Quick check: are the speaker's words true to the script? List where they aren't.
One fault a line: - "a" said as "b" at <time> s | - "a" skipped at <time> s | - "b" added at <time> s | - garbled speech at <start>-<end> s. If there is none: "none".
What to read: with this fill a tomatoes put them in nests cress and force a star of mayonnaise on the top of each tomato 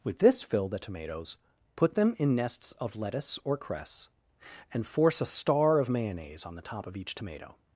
- "a" said as "the" at 0.7 s
- "of lettuce or" added at 2.7 s